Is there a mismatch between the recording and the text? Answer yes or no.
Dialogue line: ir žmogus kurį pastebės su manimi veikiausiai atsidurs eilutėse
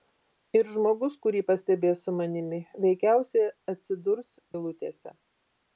no